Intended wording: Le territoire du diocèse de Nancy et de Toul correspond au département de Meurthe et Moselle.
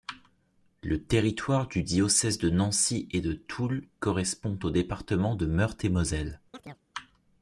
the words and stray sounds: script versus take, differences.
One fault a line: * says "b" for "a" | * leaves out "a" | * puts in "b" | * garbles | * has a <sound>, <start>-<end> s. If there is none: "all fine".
* has a chirp, 6.5-6.8 s